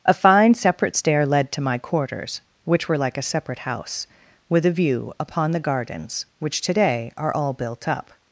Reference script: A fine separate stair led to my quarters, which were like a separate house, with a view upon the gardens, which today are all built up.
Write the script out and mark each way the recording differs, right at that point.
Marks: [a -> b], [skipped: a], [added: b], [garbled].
A fine separate stair led to my quarters, which were like a separate house, with a view upon the gardens, which today are all built up.